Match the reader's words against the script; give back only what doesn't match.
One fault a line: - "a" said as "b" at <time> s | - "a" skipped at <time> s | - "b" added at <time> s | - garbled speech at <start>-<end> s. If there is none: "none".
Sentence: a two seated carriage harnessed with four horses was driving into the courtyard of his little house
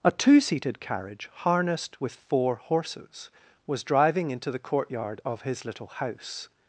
none